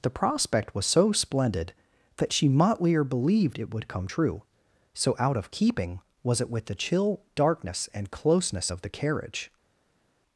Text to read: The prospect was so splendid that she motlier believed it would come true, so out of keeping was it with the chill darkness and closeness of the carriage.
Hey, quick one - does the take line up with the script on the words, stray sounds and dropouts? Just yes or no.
yes